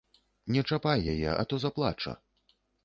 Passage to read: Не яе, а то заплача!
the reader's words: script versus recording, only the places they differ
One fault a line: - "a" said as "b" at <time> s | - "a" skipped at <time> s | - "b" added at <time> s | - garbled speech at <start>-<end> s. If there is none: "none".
- "чапай" added at 0.7 s